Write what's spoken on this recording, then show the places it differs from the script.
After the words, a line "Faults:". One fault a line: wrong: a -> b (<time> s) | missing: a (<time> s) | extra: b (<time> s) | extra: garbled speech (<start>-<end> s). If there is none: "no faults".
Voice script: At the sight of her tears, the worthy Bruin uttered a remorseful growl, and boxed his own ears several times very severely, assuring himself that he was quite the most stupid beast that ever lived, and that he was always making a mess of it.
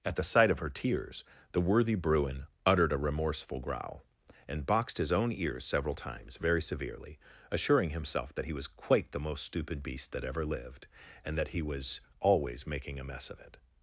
At the sight of her tears, the worthy Bruin uttered a remorseful growl, and boxed his own ears several times very severely, assuring himself that he was quite the most stupid beast that ever lived, and that he was always making a mess of it.
Faults:
no faults